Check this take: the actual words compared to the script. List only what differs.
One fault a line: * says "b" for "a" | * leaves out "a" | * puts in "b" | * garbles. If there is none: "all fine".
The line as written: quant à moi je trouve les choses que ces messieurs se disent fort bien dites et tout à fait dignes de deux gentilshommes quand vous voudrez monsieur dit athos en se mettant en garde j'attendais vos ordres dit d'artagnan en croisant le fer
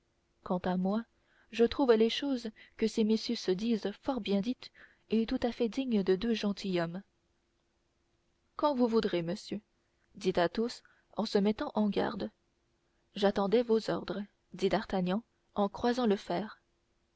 all fine